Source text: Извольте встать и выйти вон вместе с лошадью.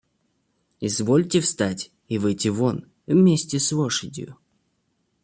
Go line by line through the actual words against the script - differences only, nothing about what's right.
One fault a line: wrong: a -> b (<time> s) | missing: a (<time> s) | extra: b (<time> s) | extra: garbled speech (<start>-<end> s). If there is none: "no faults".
no faults